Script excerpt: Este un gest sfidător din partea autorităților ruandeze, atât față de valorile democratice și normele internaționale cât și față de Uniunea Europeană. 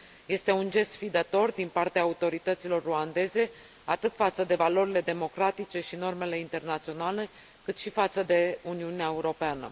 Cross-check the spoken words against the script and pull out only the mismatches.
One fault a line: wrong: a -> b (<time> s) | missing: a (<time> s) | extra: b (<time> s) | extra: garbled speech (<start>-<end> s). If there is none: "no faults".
no faults